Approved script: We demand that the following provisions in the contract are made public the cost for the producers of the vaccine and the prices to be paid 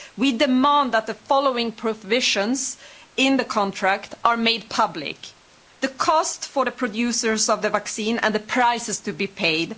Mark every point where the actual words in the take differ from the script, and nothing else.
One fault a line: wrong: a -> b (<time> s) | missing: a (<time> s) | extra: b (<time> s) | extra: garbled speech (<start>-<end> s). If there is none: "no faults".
no faults